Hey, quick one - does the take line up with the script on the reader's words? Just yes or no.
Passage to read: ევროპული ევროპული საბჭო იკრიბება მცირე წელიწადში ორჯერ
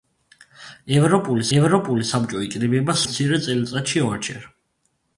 yes